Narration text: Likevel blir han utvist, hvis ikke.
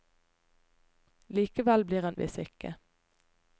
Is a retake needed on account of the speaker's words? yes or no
yes